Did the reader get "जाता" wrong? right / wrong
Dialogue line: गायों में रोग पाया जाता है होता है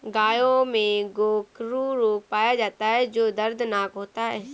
right